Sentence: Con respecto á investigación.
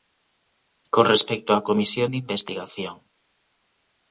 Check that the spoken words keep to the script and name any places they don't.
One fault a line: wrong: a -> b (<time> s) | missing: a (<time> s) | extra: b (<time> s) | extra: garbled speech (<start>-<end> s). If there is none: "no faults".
extra: comisión de (1.7 s)